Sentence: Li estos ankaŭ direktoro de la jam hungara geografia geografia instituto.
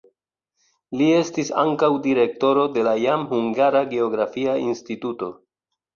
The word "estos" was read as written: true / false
false